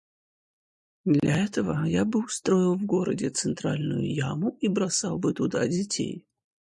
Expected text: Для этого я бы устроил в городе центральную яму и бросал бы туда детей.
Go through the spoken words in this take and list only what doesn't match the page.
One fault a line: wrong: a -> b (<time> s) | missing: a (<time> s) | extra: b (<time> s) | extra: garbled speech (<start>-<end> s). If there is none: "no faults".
no faults